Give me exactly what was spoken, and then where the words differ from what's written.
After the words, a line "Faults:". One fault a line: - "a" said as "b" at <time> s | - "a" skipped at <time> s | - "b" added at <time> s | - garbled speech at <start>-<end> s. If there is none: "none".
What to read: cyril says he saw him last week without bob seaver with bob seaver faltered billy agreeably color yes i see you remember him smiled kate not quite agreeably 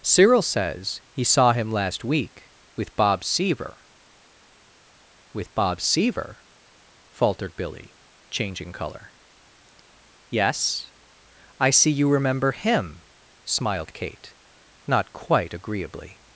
cyril says he saw him last week with bob seaver with bob seaver faltered billy changing color yes i see you remember him smiled kate not quite agreeably
Faults:
- "without" said as "with" at 2.8 s
- "agreeably" said as "changing" at 8.3 s